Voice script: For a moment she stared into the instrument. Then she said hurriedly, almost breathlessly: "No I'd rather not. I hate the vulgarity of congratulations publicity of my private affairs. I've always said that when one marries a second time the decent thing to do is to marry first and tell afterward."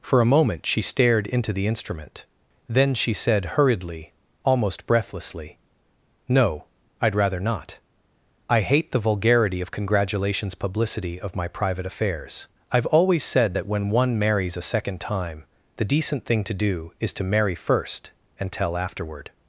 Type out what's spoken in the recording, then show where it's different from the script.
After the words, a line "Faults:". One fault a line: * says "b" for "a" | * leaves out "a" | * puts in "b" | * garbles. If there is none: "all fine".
For a moment she stared into the instrument. Then she said hurriedly, almost breathlessly: "No I'd rather not. I hate the vulgarity of congratulations publicity of my private affairs. I've always said that when one marries a second time the decent thing to do is to marry first and tell afterward."
Faults:
all fine